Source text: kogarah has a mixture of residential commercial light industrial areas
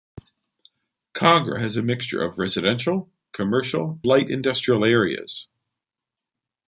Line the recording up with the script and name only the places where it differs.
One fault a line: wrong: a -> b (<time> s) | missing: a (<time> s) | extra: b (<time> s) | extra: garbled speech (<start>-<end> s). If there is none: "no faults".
no faults